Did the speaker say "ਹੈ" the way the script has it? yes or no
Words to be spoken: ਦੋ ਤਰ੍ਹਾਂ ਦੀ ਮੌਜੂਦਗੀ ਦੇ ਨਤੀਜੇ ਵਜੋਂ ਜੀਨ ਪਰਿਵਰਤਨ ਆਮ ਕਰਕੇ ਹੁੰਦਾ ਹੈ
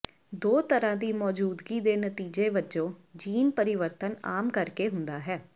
yes